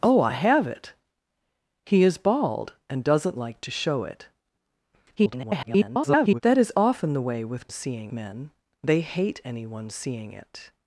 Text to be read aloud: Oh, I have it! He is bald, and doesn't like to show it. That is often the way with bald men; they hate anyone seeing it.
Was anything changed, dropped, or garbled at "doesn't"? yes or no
no